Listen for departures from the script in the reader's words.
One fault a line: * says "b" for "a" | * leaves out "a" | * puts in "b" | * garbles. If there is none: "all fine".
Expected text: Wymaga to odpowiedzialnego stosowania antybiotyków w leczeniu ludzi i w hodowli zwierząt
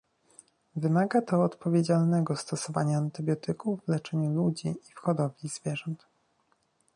all fine